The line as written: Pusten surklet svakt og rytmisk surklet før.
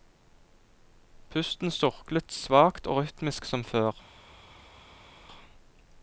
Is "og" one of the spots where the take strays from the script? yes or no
no